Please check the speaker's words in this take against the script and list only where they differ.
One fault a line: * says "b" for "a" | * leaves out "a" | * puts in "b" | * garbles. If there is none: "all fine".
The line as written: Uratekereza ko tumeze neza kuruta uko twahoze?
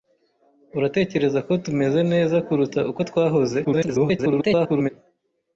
* garbles